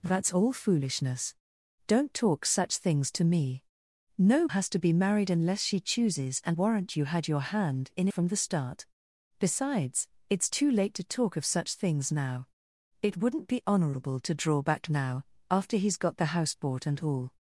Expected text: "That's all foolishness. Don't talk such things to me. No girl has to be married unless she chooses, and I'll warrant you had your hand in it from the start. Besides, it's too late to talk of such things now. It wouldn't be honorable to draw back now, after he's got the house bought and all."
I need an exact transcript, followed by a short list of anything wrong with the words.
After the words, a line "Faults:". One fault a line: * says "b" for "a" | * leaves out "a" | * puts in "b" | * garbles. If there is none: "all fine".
"That's all foolishness. Don't talk such things to me. No has to be married unless she chooses, and Warrant you had your hand in from the start. Besides, it's too late to talk of such things now. It wouldn't be honorable to draw back now, after he's got the house bought and all."
Faults:
* leaves out "girl"
* leaves out "I'll"
* leaves out "it"